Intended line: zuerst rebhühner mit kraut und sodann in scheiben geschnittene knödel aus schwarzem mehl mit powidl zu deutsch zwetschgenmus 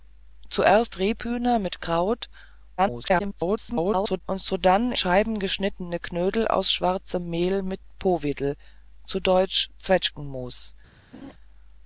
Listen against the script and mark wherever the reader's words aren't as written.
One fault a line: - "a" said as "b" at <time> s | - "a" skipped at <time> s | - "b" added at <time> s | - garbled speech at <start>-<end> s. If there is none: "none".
- garbled speech at 2.8-4.2 s
- "in" skipped at 4.9 s